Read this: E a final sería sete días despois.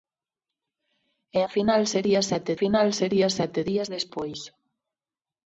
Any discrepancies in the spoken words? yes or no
yes